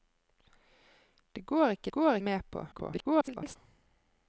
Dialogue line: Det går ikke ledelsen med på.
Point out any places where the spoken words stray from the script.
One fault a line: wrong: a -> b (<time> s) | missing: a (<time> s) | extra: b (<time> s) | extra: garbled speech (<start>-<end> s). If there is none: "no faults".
wrong: ledelsen -> går (1.9 s)
extra: garbled speech (2.7-3.6 s)